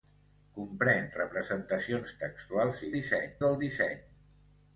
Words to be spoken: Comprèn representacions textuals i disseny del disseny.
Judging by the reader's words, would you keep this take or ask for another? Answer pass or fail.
pass